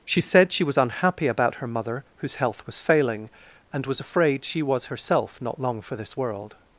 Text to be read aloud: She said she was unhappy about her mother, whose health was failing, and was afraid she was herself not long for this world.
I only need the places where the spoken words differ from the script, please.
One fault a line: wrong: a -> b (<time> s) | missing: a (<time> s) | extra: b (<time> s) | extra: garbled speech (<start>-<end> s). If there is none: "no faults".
no faults